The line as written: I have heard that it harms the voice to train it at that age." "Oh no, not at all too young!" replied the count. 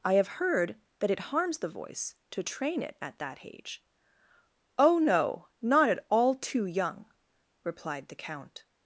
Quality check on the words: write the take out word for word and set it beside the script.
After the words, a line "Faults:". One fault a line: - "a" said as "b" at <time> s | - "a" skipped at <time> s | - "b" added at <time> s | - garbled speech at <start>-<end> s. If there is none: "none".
I have heard that it harms the voice to train it at that age." "Oh no, not at all too young!" replied the count.
Faults:
none